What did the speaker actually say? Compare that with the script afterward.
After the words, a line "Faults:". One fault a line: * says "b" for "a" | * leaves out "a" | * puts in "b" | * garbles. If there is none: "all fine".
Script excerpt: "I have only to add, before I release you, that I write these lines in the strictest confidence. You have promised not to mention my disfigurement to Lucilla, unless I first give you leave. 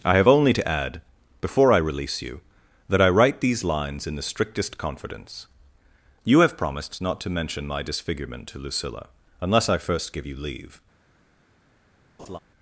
"I have only to add, before I release you, that I write these lines in the strictest confidence. You have promised not to mention my disfigurement to Lucilla, unless I first give you leave.
Faults:
all fine